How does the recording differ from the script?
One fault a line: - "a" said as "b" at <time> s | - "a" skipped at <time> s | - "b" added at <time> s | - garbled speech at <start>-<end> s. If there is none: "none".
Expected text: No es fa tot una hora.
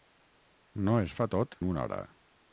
none